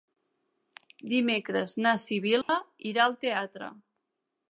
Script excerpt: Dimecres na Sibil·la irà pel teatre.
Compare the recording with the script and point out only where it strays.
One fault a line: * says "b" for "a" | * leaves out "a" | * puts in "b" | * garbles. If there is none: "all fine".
* says "al" for "pel"